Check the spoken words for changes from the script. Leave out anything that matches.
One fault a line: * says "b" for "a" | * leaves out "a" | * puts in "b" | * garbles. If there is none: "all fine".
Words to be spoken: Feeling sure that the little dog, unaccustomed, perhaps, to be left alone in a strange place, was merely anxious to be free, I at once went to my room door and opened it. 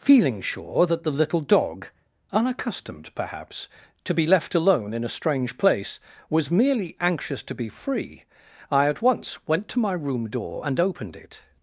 all fine